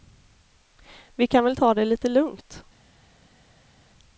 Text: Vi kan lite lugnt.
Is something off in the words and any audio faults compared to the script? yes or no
yes